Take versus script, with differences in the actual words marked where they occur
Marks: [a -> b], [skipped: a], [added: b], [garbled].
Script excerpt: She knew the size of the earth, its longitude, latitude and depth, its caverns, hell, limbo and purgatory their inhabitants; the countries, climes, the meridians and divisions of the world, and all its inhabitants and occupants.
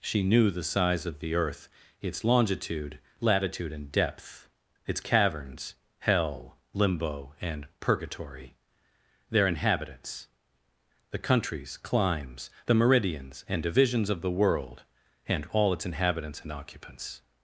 She knew the size of the earth, its longitude, latitude and depth, its caverns, hell, limbo and purgatory their inhabitants; the countries, climes, the meridians and divisions of the world, and all its inhabitants and occupants.